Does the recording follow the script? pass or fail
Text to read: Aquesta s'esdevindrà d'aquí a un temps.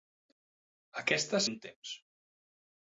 fail